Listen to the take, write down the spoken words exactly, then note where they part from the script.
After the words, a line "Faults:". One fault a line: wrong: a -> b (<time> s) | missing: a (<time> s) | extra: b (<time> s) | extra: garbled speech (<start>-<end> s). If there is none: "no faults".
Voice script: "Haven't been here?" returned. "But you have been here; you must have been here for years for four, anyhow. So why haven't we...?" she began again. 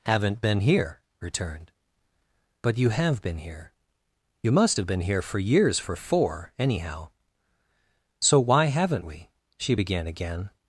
"Haven't been here?" returned. "But you have been here; you must have been here for years for four, anyhow. So why haven't we...?" she began again.
Faults:
no faults